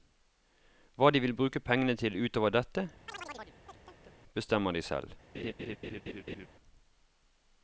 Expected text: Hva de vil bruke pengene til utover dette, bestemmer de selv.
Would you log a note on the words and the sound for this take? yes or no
yes